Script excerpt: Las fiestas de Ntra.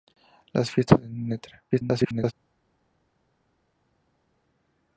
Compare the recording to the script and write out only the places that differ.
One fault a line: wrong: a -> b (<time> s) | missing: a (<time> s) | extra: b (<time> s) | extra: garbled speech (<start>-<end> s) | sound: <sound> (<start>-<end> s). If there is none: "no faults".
extra: garbled speech (1.7-2.3 s)